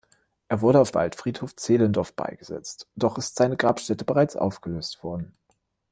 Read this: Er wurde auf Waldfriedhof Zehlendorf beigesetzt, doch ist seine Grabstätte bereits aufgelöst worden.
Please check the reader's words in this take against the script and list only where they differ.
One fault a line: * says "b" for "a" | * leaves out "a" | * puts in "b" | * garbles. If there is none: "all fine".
all fine